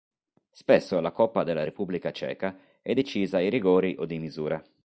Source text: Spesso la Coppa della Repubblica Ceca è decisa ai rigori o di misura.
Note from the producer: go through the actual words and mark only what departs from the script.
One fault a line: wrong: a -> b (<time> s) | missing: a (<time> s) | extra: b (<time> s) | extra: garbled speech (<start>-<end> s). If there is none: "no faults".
no faults